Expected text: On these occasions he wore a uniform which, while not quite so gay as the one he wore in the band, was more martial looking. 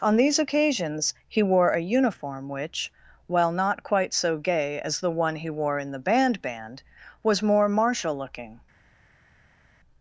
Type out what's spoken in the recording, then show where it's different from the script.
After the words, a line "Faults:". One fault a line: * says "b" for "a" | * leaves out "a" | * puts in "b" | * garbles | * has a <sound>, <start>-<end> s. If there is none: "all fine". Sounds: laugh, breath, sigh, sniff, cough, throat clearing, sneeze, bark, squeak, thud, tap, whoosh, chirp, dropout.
On these occasions he wore a uniform which, while not quite so gay as the one he wore in the band band, was more martial looking.
Faults:
* puts in "band"